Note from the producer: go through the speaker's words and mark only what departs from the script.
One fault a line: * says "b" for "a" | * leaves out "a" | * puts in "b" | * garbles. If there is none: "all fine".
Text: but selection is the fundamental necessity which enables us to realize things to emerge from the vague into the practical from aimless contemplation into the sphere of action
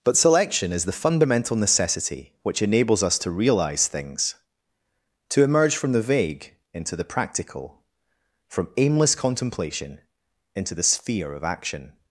all fine